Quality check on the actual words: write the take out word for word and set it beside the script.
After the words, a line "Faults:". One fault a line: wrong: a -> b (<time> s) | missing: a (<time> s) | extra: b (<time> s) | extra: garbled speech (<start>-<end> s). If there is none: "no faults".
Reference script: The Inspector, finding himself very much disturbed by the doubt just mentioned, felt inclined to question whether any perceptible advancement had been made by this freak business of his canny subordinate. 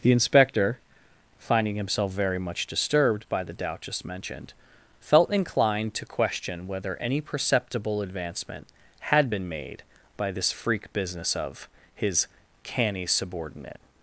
The Inspector, finding himself very much disturbed by the doubt just mentioned, felt inclined to question whether any perceptible advancement had been made by this freak business of his canny subordinate.
Faults:
no faults